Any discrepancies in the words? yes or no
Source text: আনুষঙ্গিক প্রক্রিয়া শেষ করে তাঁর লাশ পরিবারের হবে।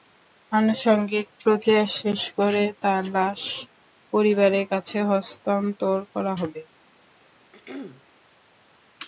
yes